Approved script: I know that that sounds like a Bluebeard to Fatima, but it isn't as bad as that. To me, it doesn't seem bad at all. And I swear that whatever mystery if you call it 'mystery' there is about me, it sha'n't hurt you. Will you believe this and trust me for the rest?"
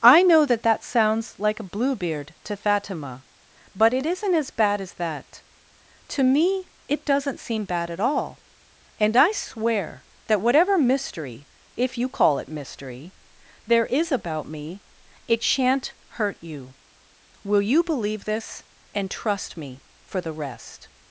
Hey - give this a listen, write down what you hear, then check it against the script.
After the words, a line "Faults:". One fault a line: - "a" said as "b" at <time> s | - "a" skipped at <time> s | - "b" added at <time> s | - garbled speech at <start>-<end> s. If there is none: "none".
I know that that sounds like a Bluebeard to Fatima, but it isn't as bad as that. To me, it doesn't seem bad at all. And I swear that whatever mystery if you call it 'mystery' there is about me, it sha'n't hurt you. Will you believe this and trust me for the rest?"
Faults:
none